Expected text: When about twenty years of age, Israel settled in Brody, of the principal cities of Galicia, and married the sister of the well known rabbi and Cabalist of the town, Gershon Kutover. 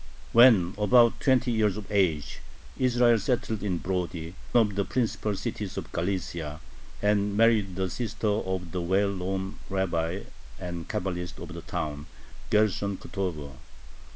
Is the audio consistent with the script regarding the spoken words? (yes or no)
yes